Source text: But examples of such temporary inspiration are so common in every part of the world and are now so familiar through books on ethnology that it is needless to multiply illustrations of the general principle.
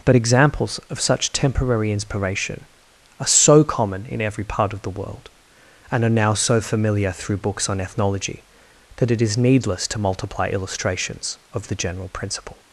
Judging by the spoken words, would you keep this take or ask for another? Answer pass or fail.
pass